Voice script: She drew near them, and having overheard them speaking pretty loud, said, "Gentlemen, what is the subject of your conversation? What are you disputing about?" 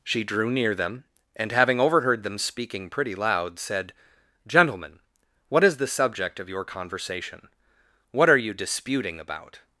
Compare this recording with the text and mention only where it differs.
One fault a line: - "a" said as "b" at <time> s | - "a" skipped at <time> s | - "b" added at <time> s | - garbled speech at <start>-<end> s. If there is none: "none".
none